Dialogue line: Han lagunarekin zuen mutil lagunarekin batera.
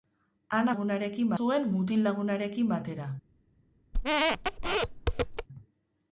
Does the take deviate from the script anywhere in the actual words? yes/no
no